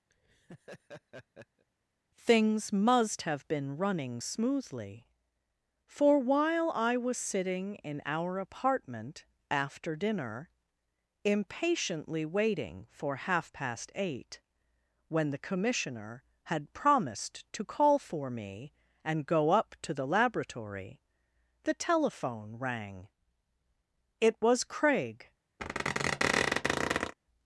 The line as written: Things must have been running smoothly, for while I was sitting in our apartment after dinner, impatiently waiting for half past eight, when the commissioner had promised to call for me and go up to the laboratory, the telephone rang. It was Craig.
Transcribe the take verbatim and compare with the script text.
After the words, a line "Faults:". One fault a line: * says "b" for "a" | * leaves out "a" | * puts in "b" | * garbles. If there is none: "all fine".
Things must have been running smoothly, for while I was sitting in our apartment after dinner, impatiently waiting for half past eight, when the commissioner had promised to call for me and go up to the laboratory, the telephone rang. It was Craig.
Faults:
all fine